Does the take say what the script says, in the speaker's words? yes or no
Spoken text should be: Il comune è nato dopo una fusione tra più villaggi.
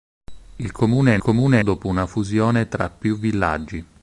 no